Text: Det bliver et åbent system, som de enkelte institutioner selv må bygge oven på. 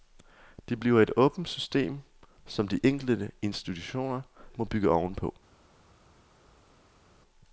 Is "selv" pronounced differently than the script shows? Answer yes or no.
yes